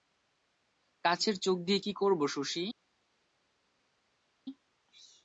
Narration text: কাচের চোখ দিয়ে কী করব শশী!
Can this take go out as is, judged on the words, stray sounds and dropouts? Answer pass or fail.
pass